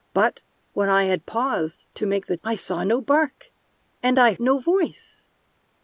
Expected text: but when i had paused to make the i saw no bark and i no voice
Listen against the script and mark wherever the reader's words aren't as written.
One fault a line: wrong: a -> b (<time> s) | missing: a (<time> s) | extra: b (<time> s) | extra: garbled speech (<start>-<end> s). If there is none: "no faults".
no faults